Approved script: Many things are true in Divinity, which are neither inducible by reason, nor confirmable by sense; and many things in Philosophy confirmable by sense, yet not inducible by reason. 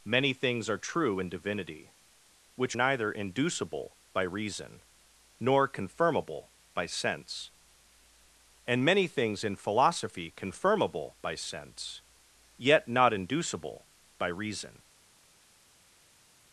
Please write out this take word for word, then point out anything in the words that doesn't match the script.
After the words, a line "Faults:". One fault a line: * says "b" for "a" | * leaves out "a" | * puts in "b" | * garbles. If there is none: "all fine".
Many things are true in Divinity, which neither inducible by reason, nor confirmable by sense; and many things in Philosophy confirmable by sense, yet not inducible by reason.
Faults:
* leaves out "are"